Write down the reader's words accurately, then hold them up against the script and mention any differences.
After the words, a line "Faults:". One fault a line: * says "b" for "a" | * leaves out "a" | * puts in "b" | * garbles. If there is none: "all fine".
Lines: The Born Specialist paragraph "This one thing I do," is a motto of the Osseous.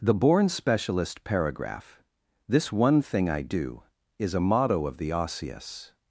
The Born Specialist paragraph "This one thing I do," is a motto of the Osseous.
Faults:
all fine